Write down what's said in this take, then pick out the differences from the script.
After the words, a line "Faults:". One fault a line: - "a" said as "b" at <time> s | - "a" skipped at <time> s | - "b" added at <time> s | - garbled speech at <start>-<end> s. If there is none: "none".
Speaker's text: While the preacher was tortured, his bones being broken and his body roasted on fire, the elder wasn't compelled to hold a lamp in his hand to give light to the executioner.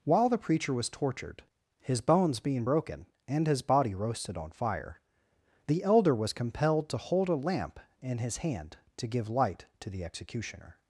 While the preacher was tortured, his bones being broken and his body roasted on fire, the elder was compelled to hold a lamp in his hand to give light to the executioner.
Faults:
- "wasn't" said as "was" at 6.1 s